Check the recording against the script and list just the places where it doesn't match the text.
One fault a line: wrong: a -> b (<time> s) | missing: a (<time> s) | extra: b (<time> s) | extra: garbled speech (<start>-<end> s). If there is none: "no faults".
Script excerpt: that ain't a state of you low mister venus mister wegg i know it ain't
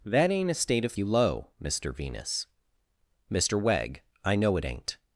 no faults